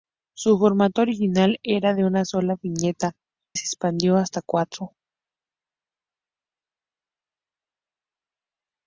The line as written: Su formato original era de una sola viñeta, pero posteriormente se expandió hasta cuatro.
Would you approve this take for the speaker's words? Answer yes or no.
no